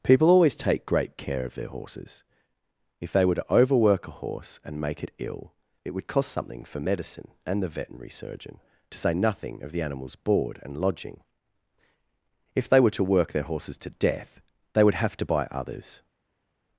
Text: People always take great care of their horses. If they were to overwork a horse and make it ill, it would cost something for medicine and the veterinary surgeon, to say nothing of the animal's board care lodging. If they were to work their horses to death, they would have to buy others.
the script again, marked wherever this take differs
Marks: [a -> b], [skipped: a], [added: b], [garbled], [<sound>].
People always take great care of their horses. If they were to overwork a horse and make it ill, it would cost something for medicine and the veterinary surgeon, to say nothing of the animal's board [care -> and] lodging. If they were to work their horses to death, they would have to buy others.